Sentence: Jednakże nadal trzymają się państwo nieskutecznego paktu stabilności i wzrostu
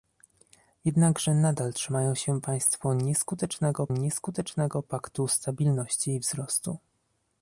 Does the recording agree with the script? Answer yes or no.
no